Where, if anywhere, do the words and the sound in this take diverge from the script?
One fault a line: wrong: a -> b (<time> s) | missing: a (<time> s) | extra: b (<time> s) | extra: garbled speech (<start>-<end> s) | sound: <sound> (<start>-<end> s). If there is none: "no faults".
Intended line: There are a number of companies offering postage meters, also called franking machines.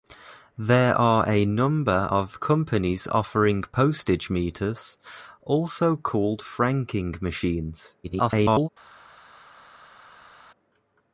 extra: garbled speech (8.0-8.7 s)